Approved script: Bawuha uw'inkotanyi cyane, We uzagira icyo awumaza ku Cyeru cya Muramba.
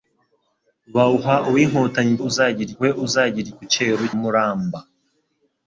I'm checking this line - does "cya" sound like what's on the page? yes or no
no